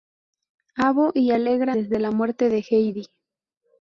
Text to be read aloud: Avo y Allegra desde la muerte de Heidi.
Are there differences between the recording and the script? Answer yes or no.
no